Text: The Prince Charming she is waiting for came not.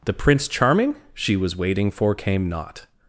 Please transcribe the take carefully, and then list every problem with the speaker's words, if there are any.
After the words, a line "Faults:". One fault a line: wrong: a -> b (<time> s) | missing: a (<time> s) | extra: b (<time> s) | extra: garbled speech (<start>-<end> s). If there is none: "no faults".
The Prince Charming she was waiting for came not.
Faults:
wrong: is -> was (1.4 s)